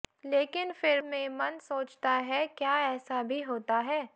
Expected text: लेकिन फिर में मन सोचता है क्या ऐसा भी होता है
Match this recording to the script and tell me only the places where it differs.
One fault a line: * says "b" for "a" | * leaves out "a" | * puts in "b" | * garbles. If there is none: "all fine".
all fine